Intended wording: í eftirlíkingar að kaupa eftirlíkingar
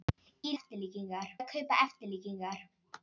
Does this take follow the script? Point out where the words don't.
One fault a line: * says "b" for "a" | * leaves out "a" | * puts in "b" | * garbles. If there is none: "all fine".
all fine